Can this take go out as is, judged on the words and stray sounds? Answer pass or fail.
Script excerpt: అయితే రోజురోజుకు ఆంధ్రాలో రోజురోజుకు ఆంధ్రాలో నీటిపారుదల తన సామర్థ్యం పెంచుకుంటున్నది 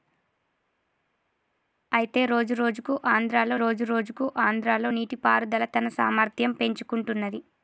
pass